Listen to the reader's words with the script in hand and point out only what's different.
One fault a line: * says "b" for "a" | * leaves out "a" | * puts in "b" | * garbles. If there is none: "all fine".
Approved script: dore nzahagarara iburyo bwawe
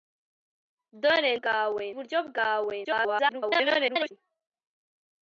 * says "bwawe" for "nzahagarara"
* garbles